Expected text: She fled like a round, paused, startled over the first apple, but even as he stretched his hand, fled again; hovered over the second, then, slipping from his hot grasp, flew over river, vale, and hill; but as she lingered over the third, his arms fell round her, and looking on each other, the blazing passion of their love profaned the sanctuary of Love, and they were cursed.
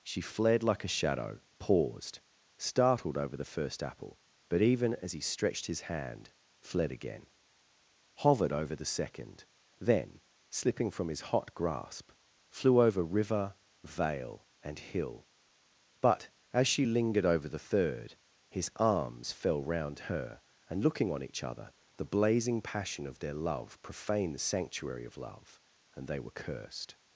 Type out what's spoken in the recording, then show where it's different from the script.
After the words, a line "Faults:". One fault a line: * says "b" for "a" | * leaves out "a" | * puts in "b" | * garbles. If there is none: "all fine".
She fled like a shadow, paused, startled over the first apple, but even as he stretched his hand, fled again; hovered over the second, then, slipping from his hot grasp, flew over river, vale, and hill; but as she lingered over the third, his arms fell round her, and looking on each other, the blazing passion of their love profaned the sanctuary of Love, and they were cursed.
Faults:
* says "shadow" for "round"